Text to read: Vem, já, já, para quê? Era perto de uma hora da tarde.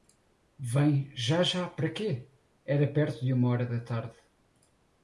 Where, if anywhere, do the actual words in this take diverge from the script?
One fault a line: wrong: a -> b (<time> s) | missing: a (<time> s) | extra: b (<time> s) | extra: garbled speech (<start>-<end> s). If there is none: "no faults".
no faults